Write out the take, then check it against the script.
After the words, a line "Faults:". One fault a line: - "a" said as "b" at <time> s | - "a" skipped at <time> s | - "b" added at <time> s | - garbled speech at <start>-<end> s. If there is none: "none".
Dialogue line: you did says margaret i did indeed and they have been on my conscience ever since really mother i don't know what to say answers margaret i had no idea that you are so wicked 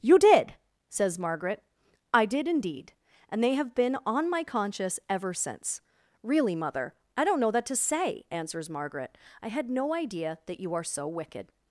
you did says margaret i did indeed and they have been on my conscience ever since really mother i don't know that to say answers margaret i had no idea that you are so wicked
Faults:
- "what" said as "that" at 7.5 s